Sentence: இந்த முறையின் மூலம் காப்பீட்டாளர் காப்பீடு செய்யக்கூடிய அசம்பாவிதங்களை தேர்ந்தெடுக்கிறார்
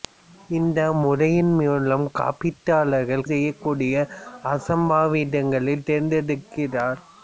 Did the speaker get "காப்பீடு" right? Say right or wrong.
wrong